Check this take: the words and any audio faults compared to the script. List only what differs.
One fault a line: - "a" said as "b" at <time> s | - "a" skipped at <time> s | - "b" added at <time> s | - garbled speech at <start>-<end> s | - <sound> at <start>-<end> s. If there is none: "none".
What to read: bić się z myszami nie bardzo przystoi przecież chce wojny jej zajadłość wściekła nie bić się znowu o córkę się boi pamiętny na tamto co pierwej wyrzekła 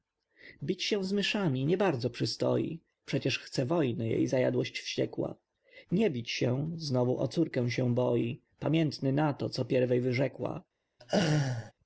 - "tamto" said as "to" at 9.3 s
- laugh at 11.0-11.7 s